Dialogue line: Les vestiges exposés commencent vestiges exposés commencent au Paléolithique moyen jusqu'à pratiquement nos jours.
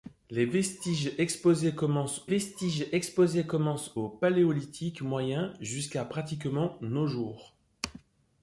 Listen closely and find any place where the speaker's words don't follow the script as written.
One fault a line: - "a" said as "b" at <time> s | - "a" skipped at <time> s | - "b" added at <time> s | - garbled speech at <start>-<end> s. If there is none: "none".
none